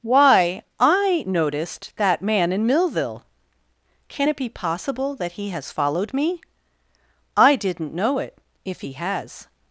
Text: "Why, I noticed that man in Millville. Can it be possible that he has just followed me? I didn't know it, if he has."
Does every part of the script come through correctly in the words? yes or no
no